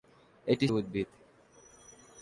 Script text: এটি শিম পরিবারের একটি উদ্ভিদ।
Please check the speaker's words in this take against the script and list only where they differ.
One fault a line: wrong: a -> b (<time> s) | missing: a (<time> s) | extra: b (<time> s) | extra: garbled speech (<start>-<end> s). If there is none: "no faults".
missing: শিম পরিবারের একটি (0.7 s)